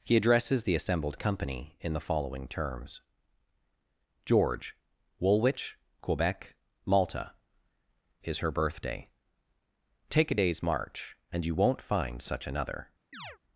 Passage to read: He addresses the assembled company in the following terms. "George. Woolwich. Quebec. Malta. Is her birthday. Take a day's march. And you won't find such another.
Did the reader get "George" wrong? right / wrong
right